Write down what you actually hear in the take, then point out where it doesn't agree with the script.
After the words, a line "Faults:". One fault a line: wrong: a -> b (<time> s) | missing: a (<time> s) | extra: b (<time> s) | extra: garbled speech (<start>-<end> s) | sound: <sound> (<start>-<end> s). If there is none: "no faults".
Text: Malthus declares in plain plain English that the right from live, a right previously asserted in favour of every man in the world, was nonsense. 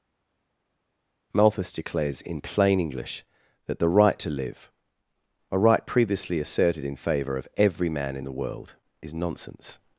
Malthus declares in plain English that the right to live, a right previously asserted in favour of every man in the world, is nonsense.
Faults:
missing: plain (2.8 s)
wrong: from -> to (4.2 s)
wrong: was -> is (9.0 s)